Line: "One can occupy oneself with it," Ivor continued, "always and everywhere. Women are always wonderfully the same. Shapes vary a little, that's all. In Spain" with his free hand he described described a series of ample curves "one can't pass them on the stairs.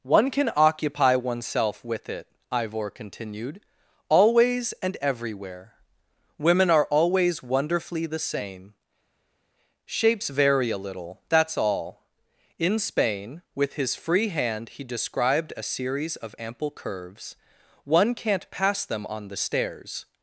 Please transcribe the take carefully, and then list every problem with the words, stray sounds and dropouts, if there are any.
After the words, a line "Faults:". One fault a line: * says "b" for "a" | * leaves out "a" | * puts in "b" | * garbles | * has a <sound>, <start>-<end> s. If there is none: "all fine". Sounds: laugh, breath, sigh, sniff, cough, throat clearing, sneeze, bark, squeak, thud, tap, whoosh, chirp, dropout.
"One can occupy oneself with it," Ivor continued, "always and everywhere. Women are always wonderfully the same. Shapes vary a little, that's all. In Spain" with his free hand he described a series of ample curves "one can't pass them on the stairs.
Faults:
* leaves out "described"